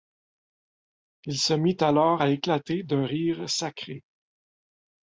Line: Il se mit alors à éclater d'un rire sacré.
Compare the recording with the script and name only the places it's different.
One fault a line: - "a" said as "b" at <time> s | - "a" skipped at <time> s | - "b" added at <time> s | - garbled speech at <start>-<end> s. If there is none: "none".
none